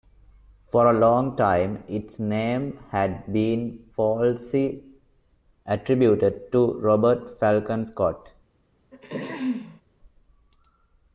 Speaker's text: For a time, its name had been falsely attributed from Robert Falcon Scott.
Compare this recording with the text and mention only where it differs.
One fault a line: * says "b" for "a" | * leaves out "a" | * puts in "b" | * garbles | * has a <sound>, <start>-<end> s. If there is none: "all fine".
* puts in "long"
* says "to" for "from"
* has a throat clearing, 8.9-9.8 s